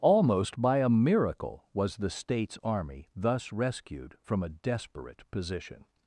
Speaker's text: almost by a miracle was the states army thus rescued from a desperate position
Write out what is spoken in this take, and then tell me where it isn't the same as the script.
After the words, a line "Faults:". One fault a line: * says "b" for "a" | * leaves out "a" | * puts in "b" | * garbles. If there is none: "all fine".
almost by a miracle was the states army thus rescued from a desperate position
Faults:
all fine